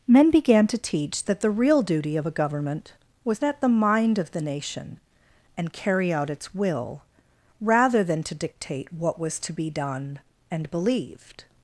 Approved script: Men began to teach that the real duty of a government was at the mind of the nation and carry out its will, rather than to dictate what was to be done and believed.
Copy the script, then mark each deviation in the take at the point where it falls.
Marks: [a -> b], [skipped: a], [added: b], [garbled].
Men began to teach that the real duty of a government was at the mind of the nation and carry out its will, rather than to dictate what was to be done and believed.